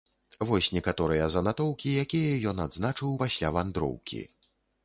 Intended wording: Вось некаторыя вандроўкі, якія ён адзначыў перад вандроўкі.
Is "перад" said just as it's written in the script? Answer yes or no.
no